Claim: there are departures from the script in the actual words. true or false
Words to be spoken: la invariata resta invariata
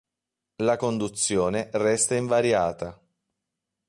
true